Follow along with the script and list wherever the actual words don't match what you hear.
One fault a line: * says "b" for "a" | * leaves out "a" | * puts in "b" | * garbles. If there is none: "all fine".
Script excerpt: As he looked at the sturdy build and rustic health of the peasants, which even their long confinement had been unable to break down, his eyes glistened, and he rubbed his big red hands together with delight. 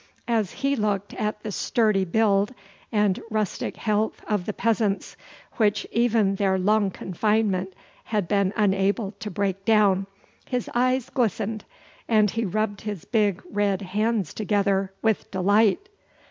all fine